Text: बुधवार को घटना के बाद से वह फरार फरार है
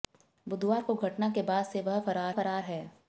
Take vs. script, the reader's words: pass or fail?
pass